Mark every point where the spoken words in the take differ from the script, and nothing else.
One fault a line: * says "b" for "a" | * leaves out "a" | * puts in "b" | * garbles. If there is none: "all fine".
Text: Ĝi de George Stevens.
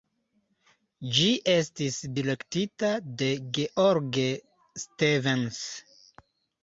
* puts in "estis direktita"